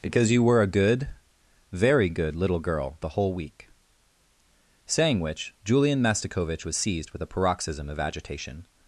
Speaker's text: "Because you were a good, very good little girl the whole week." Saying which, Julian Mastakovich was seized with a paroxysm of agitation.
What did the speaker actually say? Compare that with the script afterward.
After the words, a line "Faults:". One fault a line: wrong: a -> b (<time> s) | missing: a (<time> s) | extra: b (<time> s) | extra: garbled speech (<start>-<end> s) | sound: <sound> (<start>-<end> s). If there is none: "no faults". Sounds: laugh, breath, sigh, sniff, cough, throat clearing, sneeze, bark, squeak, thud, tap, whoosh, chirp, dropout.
"Because you were a good, very good little girl the whole week." Saying which, Julian Mastakovich was seized with a paroxysm of agitation.
Faults:
no faults